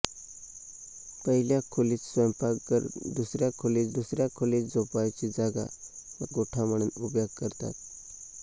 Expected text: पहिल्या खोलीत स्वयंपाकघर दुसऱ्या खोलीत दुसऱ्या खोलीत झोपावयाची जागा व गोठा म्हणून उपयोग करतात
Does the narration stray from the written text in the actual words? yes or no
no